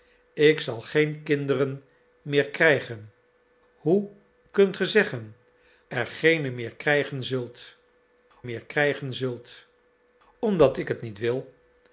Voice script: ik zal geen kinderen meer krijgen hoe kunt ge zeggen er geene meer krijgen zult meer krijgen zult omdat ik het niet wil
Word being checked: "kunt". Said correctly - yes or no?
yes